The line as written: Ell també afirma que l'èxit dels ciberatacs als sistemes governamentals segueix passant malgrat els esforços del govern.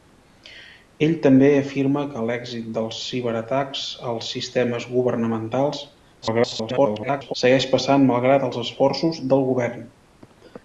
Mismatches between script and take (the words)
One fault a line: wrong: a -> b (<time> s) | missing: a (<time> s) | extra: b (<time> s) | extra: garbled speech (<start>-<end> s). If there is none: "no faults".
extra: garbled speech (6.2-7.3 s)